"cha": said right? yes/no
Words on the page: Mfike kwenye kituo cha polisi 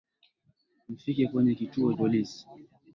no